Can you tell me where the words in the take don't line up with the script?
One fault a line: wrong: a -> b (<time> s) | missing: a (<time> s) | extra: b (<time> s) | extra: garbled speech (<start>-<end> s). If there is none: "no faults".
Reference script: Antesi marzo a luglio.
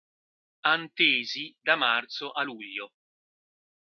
extra: da (1.6 s)